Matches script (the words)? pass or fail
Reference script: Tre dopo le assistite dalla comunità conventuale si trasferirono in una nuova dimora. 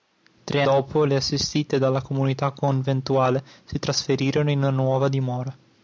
pass